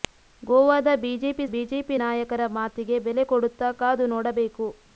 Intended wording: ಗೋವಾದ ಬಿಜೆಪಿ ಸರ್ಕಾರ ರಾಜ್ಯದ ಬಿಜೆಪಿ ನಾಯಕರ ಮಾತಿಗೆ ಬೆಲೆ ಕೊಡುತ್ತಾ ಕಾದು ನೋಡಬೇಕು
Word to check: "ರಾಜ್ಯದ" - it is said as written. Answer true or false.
false